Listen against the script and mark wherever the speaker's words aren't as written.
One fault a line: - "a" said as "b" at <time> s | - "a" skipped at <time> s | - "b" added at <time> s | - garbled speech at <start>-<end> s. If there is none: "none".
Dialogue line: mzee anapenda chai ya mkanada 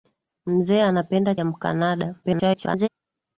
- "chai" skipped at 1.4 s
- garbled speech at 2.2-2.9 s